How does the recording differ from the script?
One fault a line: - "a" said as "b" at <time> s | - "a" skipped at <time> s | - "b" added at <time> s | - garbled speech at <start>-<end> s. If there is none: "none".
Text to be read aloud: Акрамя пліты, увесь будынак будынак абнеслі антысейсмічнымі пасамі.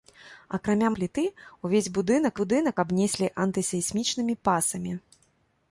none